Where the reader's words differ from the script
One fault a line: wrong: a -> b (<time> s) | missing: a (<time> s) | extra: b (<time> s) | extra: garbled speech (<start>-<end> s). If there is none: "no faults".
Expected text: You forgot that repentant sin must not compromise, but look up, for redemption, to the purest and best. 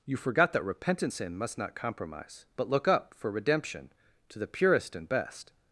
no faults